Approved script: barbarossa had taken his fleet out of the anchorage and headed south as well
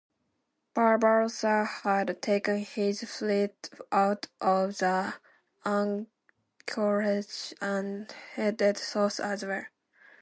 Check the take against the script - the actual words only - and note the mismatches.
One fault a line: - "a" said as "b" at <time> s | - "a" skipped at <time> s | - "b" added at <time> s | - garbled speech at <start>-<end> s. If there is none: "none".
none